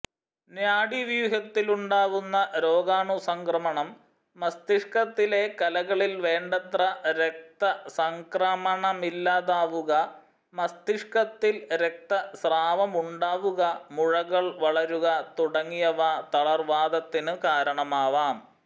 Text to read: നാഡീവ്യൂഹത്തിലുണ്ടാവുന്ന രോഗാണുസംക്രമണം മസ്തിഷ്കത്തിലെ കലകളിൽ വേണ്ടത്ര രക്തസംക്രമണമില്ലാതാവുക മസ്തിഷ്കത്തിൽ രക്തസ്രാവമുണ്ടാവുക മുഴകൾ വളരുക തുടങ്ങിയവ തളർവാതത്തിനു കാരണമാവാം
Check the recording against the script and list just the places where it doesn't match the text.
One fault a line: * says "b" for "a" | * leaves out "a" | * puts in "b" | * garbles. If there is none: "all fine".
all fine